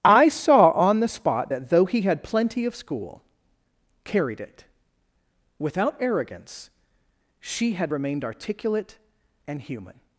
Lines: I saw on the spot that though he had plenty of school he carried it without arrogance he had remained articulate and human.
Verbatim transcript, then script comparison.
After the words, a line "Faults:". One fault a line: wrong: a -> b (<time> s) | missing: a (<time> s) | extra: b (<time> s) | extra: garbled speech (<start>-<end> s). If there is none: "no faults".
I saw on the spot that though he had plenty of school carried it without arrogance she had remained articulate and human.
Faults:
missing: he (3.2 s)
wrong: he -> she (7.4 s)